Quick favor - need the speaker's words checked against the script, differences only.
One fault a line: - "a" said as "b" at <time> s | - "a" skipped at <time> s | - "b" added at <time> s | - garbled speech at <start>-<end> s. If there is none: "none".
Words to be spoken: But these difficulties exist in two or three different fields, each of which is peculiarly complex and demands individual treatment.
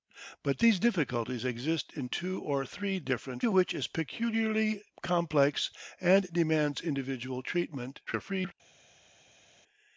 - "fields each" skipped at 3.4 s
- garbled speech at 8.1-8.5 s